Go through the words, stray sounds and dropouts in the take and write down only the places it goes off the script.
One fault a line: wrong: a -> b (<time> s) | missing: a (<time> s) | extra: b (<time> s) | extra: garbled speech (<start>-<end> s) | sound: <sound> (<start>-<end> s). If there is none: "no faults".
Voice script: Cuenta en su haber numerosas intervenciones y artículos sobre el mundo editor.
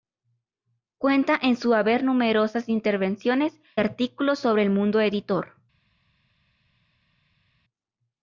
missing: y (3.6 s)